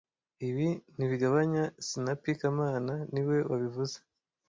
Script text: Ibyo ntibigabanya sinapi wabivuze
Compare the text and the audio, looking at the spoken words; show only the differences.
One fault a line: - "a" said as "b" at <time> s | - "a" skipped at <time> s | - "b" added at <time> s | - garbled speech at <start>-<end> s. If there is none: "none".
- "Ibyo" said as "Ibi" at 0.5 s
- "kamana niwe" added at 2.4 s